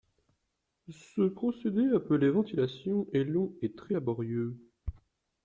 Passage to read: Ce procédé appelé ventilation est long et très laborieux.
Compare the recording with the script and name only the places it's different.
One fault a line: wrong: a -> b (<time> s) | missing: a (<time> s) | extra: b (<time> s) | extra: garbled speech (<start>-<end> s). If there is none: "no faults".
no faults